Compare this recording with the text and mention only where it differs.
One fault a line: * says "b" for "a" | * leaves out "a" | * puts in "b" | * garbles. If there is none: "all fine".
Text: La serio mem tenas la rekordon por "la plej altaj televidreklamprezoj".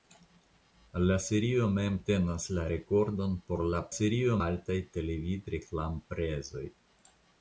* says "serio" for "plej"